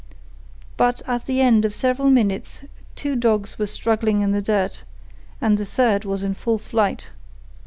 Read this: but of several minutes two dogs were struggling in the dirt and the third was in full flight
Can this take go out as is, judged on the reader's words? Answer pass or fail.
fail